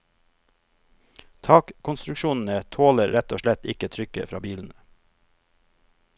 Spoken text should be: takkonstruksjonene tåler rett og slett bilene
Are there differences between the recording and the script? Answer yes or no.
yes